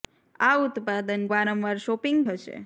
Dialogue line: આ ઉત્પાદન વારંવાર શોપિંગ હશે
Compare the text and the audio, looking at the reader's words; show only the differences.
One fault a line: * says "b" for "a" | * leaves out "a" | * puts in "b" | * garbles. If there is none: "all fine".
all fine